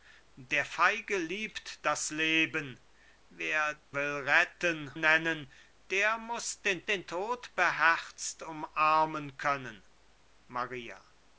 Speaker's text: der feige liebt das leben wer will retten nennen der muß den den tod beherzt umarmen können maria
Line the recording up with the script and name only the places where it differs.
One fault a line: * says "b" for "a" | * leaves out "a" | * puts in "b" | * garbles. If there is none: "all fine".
all fine